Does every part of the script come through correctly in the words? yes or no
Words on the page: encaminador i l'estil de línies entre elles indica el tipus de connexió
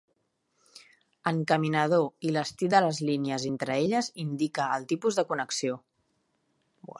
no